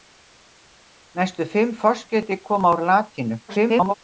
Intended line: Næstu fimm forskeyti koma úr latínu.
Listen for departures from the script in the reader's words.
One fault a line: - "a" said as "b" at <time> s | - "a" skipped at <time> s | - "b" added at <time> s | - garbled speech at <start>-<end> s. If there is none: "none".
- garbled speech at 3.5-3.9 s